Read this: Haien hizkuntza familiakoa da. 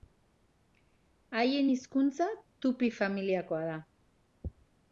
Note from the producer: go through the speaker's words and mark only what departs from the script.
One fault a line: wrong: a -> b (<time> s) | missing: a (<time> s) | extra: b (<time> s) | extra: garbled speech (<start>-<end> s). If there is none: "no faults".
extra: tupi (2.6 s)